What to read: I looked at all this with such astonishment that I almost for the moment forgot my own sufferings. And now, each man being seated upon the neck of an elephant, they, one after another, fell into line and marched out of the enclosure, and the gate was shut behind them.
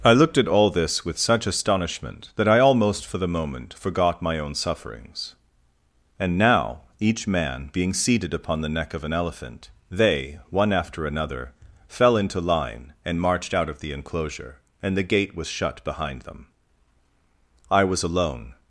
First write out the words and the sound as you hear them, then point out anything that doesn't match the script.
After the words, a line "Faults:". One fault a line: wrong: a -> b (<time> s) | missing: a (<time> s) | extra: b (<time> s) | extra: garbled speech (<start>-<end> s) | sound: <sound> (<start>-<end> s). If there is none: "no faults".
I looked at all this with such astonishment that I almost for the moment forgot my own sufferings. And now, each man being seated upon the neck of an elephant, they, one after another, fell into line and marched out of the enclosure, and the gate was shut behind them. I was alone
Faults:
extra: I was alone (17.7 s)